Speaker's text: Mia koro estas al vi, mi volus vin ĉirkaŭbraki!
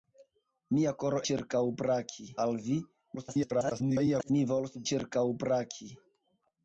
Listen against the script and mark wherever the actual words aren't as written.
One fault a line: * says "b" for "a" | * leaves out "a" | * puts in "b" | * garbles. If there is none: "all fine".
* says "ĉirkaŭbraki" for "estas"
* garbles
* leaves out "vin"